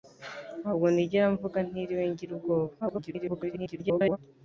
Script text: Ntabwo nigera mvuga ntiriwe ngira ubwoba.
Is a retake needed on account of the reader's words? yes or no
yes